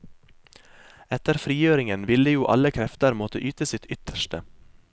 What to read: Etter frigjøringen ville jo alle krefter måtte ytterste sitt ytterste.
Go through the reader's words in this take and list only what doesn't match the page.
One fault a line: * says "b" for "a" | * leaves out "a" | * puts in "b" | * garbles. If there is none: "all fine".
* says "yte" for "ytterste"